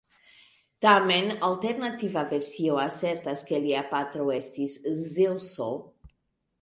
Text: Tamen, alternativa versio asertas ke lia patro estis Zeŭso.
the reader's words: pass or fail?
pass